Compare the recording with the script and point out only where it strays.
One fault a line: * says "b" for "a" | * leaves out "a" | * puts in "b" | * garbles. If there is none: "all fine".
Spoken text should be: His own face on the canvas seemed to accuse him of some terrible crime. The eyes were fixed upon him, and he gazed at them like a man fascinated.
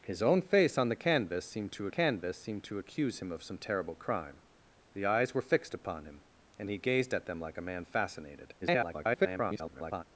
* puts in "canvas seemed to"
* garbles